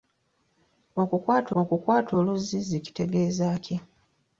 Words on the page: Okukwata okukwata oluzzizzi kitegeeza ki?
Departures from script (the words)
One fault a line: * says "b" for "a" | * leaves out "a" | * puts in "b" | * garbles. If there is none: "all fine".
all fine